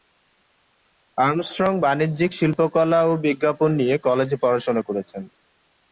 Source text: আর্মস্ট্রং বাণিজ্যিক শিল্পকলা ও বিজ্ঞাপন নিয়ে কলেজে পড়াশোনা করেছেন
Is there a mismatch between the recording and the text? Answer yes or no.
no